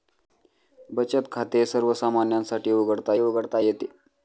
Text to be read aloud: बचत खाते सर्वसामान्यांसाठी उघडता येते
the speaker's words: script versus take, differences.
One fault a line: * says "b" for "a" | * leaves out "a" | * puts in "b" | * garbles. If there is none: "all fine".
* puts in "उघडता"